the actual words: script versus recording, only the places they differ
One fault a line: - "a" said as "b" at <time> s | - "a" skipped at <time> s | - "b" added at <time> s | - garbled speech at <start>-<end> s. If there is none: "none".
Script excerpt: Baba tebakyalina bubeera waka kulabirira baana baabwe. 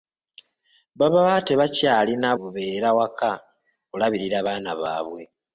none